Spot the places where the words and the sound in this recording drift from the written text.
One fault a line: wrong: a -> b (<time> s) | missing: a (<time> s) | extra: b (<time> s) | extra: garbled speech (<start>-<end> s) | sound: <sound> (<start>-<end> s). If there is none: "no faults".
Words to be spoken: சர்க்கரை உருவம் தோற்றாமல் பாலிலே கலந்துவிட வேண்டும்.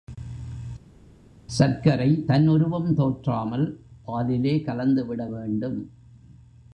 extra: தன் (2.2 s)